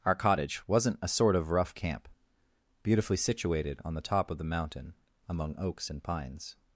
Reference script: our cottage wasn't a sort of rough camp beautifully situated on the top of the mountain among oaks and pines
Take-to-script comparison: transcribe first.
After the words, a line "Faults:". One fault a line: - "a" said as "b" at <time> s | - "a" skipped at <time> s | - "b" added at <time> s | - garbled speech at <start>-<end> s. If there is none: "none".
our cottage wasn't a sort of rough camp beautifully situated on the top of the mountain among oaks and pines
Faults:
none